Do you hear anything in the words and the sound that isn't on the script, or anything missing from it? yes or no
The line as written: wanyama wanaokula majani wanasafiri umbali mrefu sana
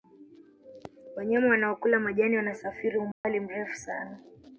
yes